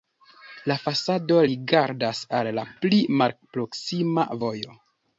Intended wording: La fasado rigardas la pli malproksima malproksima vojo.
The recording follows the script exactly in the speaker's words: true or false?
false